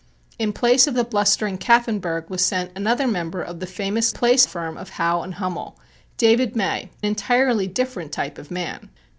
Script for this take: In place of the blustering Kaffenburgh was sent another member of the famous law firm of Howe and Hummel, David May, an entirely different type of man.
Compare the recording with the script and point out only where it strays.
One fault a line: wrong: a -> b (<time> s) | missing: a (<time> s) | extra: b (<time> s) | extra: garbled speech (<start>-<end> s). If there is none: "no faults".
wrong: law -> place (4.1 s)
missing: an (6.9 s)